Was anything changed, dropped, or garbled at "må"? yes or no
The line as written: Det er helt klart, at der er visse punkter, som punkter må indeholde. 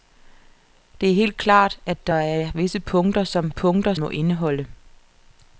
no